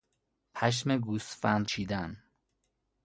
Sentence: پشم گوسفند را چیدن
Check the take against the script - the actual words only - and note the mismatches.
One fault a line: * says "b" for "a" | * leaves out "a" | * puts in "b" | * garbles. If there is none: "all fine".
* leaves out "را"